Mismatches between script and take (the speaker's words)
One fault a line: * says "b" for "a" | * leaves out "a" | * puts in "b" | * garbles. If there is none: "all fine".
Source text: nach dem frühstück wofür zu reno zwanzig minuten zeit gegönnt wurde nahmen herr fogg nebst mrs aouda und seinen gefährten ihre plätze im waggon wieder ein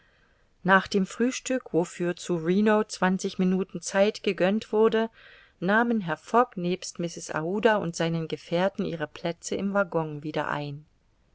all fine